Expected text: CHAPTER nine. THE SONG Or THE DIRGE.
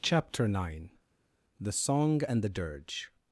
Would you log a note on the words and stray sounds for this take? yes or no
yes